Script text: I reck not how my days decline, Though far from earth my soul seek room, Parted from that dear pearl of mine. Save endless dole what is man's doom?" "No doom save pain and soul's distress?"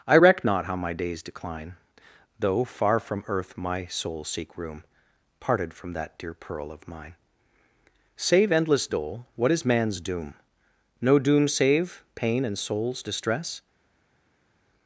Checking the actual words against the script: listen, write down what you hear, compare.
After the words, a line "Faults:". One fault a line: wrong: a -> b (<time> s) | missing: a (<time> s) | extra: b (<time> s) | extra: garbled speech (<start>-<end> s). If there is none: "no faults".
I reck not how my days decline, Though far from earth my soul seek room, Parted from that dear pearl of mine. Save endless dole what is man's doom?" "No doom save pain and soul's distress?"
Faults:
no faults